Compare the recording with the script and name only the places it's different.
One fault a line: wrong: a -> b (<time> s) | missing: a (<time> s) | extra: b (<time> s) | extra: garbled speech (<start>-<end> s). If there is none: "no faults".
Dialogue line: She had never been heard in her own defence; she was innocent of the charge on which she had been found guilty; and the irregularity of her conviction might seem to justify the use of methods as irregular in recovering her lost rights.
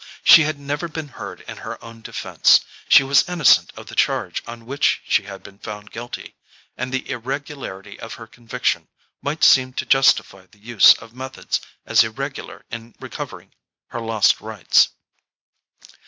no faults